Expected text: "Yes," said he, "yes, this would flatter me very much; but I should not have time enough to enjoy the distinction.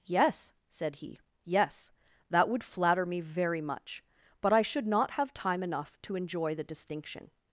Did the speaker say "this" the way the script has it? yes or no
no